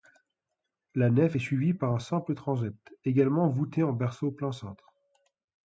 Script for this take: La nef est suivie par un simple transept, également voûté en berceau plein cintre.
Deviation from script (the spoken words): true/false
false